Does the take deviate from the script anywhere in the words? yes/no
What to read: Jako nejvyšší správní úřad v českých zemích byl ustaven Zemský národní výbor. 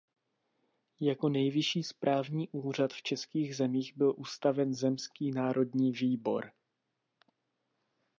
no